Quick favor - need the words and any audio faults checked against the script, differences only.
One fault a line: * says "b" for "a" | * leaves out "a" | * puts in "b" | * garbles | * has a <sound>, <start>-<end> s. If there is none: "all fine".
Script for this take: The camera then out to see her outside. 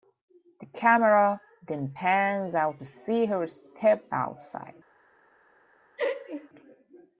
* puts in "pans"
* puts in "step"
* has a laugh, 6.0-6.5 s